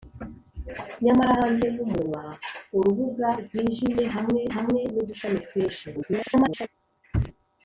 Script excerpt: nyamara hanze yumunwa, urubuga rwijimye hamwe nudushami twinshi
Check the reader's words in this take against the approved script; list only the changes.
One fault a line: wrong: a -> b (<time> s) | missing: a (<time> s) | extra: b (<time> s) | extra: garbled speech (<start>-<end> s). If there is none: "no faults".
extra: hamwe (4.6 s)
extra: garbled speech (5.9-6.7 s)